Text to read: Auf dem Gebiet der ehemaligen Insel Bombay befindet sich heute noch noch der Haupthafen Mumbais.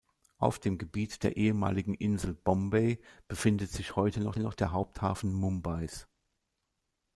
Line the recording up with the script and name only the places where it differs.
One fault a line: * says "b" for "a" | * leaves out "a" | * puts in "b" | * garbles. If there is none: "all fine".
all fine